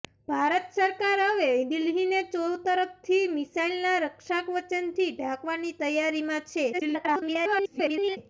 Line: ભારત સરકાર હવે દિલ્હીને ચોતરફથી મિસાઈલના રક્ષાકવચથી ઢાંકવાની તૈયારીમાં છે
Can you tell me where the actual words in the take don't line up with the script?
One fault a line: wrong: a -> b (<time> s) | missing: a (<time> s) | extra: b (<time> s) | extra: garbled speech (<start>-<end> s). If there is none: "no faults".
extra: garbled speech (6.7-8.2 s)